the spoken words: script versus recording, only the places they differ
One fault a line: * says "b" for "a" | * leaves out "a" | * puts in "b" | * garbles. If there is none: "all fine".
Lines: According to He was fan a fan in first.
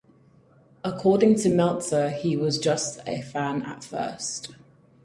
* puts in "Meltzer"
* says "just" for "fan"
* says "at" for "in"